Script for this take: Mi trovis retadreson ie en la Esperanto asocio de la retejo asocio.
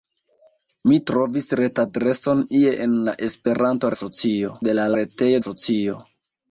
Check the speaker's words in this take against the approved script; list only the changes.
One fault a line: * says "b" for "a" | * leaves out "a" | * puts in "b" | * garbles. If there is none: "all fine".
all fine